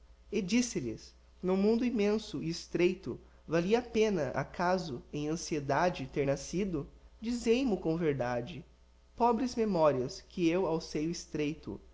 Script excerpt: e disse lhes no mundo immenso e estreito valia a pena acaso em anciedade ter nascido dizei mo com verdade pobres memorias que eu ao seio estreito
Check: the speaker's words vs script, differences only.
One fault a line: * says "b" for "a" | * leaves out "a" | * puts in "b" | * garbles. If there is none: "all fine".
all fine